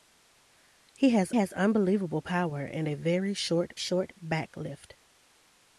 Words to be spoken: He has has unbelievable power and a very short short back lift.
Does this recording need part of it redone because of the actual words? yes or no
no